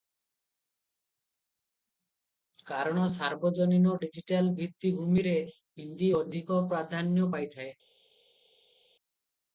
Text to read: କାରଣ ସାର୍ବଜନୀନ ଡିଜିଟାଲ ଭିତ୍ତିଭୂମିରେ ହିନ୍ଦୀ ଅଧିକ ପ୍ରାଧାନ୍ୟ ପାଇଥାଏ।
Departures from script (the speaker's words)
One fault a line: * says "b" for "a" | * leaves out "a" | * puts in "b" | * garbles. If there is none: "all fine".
all fine